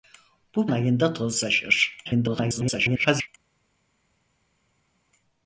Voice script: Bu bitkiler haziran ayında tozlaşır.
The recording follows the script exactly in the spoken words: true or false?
false